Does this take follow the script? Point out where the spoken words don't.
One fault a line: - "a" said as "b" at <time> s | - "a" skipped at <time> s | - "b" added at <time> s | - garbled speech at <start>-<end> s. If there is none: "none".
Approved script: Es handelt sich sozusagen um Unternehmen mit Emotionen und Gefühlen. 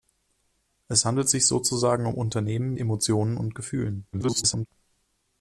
- "mit" skipped at 2.7 s
- garbled speech at 4.1-4.7 s